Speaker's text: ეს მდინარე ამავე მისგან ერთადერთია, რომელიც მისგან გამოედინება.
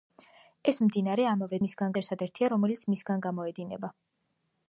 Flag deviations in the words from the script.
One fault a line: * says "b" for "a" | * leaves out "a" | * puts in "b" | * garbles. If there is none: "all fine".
all fine